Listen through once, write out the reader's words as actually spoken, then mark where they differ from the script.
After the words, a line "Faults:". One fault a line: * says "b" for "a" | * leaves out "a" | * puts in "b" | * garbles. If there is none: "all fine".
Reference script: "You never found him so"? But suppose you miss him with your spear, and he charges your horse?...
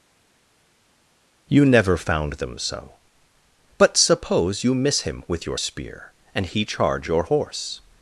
"You never found them so"? But suppose you miss him with your spear, and he charge your horse?...
Faults:
* says "them" for "him"
* says "charge" for "charges"